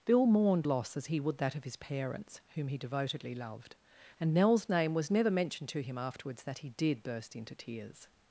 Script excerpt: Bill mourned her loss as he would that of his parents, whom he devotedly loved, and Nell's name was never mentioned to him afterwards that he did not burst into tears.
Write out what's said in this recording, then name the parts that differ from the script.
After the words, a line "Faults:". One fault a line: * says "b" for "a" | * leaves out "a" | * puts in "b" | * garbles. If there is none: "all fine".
Bill mourned loss as he would that of his parents, whom he devotedly loved, and Nell's name was never mentioned to him afterwards that he did burst into tears.
Faults:
* leaves out "her"
* leaves out "not"